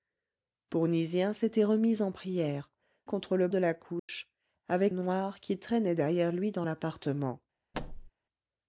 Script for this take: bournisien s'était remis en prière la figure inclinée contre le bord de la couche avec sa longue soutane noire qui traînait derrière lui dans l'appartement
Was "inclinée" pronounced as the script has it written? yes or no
no